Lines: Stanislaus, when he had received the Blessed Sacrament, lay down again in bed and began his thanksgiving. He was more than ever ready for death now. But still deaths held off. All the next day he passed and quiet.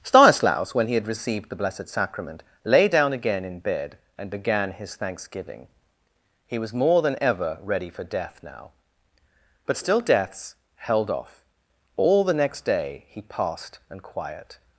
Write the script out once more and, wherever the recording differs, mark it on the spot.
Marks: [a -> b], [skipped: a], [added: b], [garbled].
Stanislaus, when he had received the Blessed Sacrament, lay down again in bed and began his thanksgiving. He was more than ever ready for death now. But still deaths held off. All the next day he passed and quiet.